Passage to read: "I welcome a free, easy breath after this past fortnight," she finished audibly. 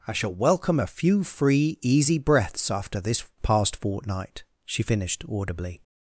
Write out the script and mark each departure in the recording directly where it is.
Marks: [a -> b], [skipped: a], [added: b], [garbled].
"I [added: shall] welcome a [added: few] free, easy [breath -> breaths] after this past fortnight," she finished audibly.